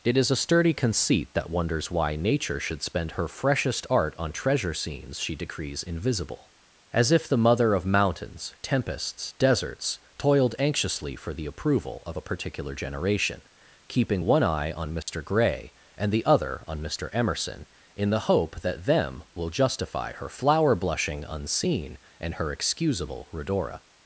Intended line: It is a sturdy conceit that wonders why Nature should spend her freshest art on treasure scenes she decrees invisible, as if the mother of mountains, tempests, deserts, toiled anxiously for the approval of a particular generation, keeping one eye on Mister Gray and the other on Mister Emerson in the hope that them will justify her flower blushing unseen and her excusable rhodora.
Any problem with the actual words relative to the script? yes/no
no